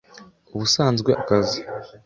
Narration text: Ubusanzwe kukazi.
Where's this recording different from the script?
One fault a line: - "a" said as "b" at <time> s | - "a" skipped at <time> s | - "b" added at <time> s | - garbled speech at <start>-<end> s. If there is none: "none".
none